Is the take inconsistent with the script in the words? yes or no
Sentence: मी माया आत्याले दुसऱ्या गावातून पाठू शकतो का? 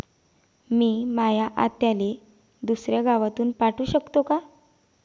no